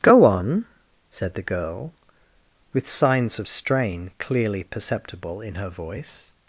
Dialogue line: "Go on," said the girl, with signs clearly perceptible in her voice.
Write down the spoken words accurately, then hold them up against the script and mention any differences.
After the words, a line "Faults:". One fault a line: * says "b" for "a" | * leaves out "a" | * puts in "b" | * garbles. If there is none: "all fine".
"Go on," said the girl, with signs of strain clearly perceptible in her voice.
Faults:
* puts in "of strain"